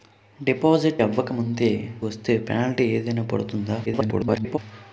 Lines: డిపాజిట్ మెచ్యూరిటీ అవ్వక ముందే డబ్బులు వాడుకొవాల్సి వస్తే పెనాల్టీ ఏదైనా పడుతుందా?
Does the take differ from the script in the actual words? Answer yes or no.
yes